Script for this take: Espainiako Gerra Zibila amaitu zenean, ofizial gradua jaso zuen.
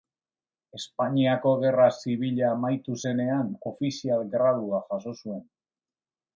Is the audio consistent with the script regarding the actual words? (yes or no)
yes